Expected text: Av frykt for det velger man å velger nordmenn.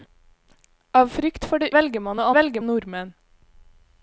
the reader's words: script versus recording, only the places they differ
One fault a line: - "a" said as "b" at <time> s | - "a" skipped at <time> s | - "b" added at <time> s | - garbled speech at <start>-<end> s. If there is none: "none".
none